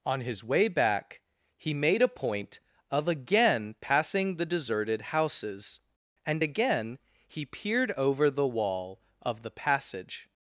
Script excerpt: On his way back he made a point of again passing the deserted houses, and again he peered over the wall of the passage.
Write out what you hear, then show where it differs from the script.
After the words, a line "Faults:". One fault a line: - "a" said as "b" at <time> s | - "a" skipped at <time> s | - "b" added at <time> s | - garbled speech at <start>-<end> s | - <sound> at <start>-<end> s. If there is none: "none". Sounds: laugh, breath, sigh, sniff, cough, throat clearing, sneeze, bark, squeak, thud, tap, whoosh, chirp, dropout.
On his way back he made a point of again passing the deserted houses, and again he peered over the wall of the passage.
Faults:
none